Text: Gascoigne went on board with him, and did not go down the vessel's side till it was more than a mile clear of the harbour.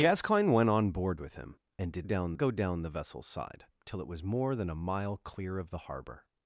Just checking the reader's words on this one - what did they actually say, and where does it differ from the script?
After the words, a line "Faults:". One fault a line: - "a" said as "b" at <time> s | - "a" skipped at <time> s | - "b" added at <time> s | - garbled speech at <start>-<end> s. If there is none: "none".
Gascoigne went on board with him, and did down go down the vessel's side till it was more than a mile clear of the harbour.
Faults:
- "not" said as "down" at 2.0 s